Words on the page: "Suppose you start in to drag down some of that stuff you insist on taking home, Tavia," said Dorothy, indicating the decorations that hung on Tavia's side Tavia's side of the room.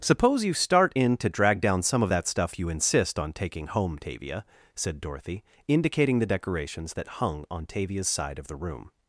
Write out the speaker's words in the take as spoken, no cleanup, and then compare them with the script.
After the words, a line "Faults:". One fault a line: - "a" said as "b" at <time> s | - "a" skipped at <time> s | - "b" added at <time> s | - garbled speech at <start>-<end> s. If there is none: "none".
"Suppose you start in to drag down some of that stuff you insist on taking home, Tavia," said Dorothy, indicating the decorations that hung on Tavia's side of the room.
Faults:
- "Tavia's side" skipped at 8.4 s